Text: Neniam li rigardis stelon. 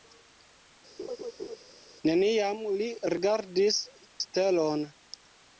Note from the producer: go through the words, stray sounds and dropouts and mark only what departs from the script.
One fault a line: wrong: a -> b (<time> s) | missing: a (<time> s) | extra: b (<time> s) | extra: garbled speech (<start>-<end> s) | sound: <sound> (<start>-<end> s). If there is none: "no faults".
sound: laugh (1.0-1.6 s)